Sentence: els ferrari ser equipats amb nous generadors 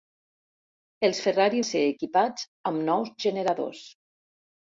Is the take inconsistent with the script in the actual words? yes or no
no